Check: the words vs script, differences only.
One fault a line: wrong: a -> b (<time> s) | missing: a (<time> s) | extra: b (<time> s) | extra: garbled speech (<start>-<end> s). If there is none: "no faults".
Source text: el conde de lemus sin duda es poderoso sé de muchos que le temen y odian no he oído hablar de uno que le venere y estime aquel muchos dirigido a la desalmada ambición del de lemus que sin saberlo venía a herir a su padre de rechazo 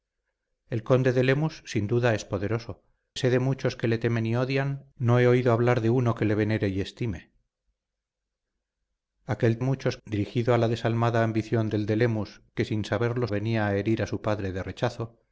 no faults